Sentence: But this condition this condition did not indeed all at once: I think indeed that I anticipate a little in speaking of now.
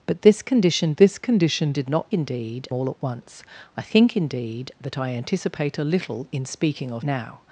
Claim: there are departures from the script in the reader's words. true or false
false